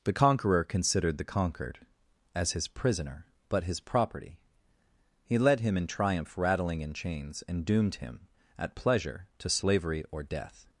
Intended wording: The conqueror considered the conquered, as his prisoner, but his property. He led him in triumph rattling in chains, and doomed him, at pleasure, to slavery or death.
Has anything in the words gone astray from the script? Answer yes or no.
no